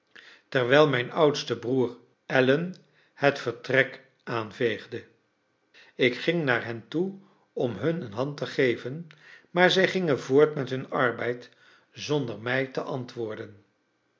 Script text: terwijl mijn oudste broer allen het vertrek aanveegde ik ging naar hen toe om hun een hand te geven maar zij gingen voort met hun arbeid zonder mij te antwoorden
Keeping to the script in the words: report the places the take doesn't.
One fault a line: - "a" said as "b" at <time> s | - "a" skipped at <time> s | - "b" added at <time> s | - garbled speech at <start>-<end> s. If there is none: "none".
none